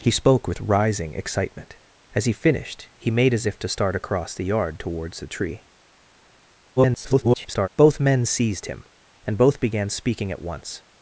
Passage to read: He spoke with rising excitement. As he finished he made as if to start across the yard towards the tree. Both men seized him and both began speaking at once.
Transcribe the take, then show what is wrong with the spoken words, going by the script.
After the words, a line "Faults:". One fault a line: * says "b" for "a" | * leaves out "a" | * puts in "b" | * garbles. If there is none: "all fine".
He spoke with rising excitement. As he finished he made as if to start across the yard towards the tree. [garbled] Both men seized him and both began speaking at once.
Faults:
* garbles